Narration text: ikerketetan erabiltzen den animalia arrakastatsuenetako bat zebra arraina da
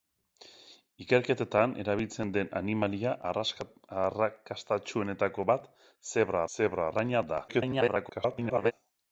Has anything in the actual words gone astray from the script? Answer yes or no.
yes